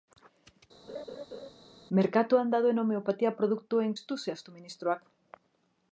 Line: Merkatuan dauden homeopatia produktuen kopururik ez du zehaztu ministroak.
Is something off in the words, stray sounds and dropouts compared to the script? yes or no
yes